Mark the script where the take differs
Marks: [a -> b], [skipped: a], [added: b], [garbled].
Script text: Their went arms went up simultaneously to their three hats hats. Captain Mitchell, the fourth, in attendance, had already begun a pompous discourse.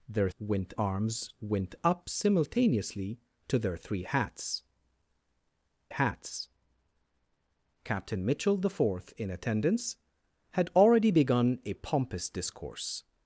Their went arms went up simultaneously to their three hats hats. Captain Mitchell, the fourth, in attendance, had already begun a pompous discourse.